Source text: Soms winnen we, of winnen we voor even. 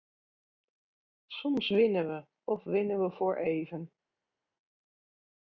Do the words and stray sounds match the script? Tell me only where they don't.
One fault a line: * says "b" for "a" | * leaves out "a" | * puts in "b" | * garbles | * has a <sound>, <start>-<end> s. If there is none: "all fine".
all fine